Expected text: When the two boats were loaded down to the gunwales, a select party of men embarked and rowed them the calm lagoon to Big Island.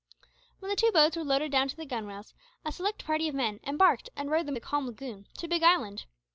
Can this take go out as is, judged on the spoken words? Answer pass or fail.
pass